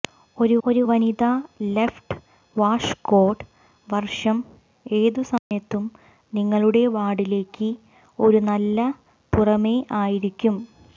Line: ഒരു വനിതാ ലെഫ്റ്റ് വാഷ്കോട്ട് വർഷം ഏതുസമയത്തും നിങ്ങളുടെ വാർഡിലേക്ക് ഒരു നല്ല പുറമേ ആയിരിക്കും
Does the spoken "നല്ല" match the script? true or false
true